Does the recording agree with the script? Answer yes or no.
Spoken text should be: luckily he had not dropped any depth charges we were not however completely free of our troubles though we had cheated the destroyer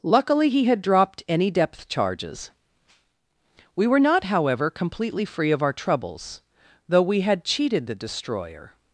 no